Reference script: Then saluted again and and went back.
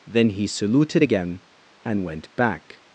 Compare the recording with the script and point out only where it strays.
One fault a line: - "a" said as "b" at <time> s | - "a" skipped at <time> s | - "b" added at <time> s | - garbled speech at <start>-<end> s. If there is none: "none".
- "he" added at 0.3 s
- "and" skipped at 2.0 s